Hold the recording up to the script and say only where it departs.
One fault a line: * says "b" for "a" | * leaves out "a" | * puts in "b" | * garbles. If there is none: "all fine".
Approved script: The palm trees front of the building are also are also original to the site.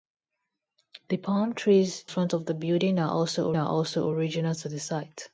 all fine